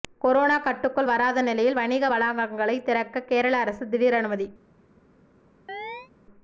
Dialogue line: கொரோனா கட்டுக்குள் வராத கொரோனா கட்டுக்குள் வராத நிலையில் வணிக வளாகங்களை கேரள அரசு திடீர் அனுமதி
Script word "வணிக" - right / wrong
right